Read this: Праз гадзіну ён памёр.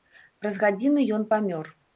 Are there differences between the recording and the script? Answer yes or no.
no